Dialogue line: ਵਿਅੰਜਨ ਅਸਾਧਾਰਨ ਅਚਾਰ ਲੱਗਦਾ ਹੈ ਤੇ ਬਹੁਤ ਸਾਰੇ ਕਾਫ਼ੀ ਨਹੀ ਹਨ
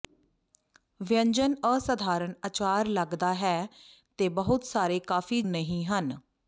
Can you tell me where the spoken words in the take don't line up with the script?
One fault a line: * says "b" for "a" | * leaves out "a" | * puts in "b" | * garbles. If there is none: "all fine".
all fine